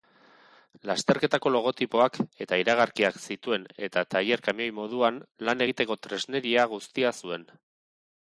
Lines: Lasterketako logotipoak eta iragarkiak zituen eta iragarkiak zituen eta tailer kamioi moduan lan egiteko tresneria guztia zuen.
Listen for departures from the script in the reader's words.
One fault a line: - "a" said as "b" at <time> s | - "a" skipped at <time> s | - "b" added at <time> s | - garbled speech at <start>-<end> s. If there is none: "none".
- "iragarkiak zituen eta" skipped at 4.0 s